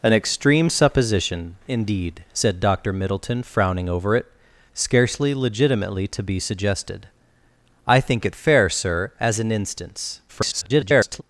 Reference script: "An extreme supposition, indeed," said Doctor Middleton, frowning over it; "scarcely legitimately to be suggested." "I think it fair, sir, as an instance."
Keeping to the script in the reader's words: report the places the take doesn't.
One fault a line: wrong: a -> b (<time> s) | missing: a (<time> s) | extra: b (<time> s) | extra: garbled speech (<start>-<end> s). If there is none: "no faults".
extra: garbled speech (10.3-11.2 s)